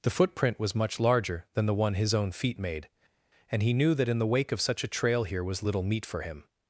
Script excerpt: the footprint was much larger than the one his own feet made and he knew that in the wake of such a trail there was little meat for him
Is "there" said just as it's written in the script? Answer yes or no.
no